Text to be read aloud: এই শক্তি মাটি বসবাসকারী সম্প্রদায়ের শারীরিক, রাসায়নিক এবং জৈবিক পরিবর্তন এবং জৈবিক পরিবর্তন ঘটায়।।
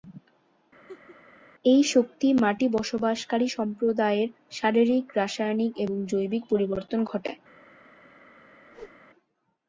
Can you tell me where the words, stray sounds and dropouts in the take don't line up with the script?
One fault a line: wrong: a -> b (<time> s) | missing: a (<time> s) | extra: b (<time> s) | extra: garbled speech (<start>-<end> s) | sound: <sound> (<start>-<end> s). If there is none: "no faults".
sound: laugh (0.9-1.2 s)
missing: এবং জৈবিক পরিবর্তন (7.0 s)
sound: whoosh (8.7-9.0 s)